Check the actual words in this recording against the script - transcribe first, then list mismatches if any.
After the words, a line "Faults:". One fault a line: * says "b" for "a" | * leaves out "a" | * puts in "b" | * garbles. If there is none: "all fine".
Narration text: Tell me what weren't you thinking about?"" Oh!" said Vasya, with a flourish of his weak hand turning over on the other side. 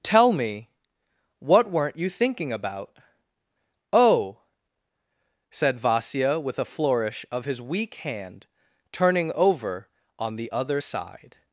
Tell me what weren't you thinking about?"" Oh!" said Vasya, with a flourish of his weak hand turning over on the other side.
Faults:
all fine